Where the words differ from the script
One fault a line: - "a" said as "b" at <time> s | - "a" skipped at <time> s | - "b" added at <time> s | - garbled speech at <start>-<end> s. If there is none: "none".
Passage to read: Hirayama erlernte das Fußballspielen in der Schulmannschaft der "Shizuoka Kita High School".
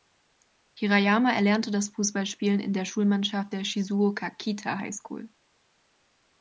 none